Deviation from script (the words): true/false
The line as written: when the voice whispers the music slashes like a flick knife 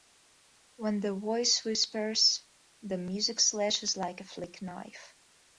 false